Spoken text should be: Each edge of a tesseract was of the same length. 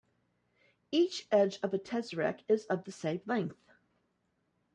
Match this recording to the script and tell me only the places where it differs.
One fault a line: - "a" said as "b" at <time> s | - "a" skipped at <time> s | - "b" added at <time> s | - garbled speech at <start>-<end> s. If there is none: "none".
- "was" said as "is" at 2.5 s